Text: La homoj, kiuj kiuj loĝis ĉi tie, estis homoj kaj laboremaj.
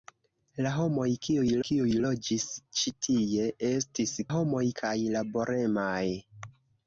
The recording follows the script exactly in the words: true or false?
true